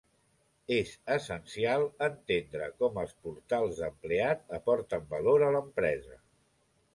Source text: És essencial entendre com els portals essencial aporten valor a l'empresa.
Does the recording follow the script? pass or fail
fail